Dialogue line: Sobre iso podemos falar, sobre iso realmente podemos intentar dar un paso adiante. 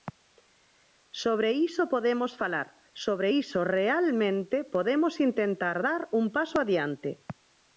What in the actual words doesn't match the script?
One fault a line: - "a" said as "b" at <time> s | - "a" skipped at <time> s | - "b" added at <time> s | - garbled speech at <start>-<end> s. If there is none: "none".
none